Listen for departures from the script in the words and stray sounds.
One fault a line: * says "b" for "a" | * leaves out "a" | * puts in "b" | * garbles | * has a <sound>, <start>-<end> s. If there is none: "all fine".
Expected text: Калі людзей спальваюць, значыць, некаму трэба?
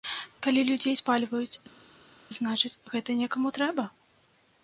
* puts in "гэта"